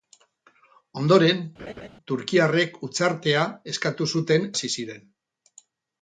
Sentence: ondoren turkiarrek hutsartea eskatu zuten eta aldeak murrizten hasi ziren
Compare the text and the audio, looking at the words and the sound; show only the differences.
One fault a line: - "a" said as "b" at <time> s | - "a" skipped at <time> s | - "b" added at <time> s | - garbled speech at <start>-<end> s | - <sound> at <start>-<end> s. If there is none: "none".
- laugh at 1.6-1.9 s
- "eta aldeak murrizten" skipped at 4.5 s